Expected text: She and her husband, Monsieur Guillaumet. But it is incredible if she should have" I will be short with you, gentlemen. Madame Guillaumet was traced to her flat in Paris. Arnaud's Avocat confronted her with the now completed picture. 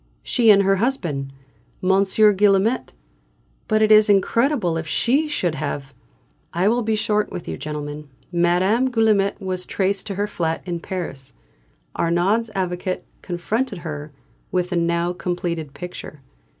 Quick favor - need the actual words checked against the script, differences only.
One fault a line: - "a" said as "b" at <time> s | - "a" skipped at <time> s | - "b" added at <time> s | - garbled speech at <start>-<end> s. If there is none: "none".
none